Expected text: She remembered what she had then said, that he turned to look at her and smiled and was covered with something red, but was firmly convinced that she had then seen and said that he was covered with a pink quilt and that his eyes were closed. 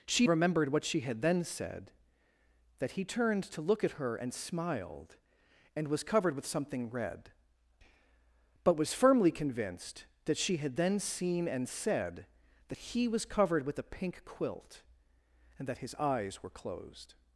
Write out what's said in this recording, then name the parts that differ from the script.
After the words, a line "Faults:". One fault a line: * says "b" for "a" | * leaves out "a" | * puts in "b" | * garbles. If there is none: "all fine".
She remembered what she had then said, that he turned to look at her and smiled and was covered with something red, but was firmly convinced that she had then seen and said that he was covered with a pink quilt and that his eyes were closed.
Faults:
all fine